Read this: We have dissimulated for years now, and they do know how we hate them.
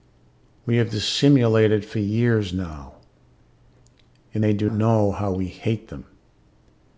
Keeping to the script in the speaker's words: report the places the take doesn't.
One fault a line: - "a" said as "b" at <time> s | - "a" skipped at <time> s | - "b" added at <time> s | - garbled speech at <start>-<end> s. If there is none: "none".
none